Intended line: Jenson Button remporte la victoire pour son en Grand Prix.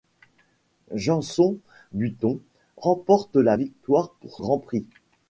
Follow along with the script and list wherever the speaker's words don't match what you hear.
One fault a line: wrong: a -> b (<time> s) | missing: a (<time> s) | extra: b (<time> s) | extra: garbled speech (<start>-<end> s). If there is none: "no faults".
missing: son en (4.4 s)